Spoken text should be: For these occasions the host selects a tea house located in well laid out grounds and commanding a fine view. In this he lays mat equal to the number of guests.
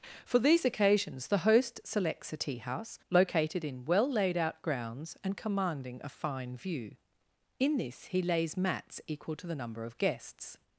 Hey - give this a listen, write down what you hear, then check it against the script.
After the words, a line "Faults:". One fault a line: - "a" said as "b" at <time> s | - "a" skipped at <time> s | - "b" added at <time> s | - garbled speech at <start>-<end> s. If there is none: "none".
For these occasions the host selects a tea house located in well laid out grounds and commanding a fine view. In this he lays mats equal to the number of guests.
Faults:
- "mat" said as "mats" at 8.6 s